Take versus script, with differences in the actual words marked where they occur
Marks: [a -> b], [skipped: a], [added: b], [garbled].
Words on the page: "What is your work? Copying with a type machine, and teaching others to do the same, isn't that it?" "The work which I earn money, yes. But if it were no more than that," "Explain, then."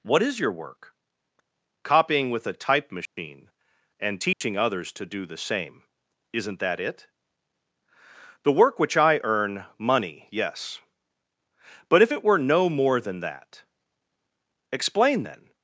"What is your work? Copying with a type machine, and teaching others to do the same, isn't that it?" "The work which I earn money, yes. But if it were no more than that," "Explain, then."